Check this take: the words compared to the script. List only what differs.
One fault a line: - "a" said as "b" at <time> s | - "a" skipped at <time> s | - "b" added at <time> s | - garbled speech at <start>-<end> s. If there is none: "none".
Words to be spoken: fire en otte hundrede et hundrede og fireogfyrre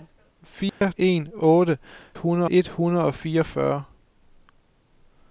none